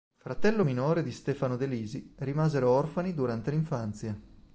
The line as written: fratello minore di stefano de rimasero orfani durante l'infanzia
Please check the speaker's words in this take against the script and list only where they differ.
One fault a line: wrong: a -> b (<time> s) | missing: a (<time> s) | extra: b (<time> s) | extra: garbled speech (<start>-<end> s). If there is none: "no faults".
extra: lisi (1.6 s)